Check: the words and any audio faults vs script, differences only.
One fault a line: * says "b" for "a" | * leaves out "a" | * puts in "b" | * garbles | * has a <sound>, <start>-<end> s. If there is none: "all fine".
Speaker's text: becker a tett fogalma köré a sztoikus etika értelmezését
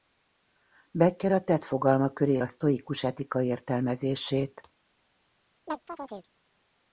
* has a chirp, 5.7-6.3 s